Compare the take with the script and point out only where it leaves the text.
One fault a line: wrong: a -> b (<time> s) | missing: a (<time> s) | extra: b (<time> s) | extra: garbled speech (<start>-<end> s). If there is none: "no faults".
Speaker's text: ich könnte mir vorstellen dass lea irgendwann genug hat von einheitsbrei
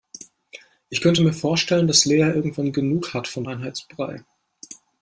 no faults